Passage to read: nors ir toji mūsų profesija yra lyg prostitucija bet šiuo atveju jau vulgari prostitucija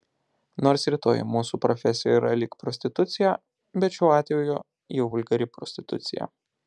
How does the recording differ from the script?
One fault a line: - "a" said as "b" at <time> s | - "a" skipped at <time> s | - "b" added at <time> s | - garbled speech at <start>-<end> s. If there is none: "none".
none